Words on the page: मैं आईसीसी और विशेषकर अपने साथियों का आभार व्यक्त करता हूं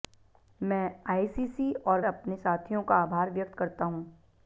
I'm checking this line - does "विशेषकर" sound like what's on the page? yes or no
no